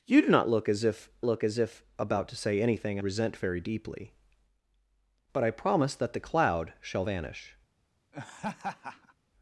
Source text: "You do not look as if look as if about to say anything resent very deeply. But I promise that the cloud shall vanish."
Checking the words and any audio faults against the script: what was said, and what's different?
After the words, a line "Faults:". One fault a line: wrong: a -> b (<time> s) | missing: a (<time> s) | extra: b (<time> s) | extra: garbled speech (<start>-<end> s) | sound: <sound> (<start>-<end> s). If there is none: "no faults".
"You do not look as if look as if about to say anything resent very deeply. But I promise that the cloud shall vanish."
Faults:
sound: laugh (8.1-9.1 s)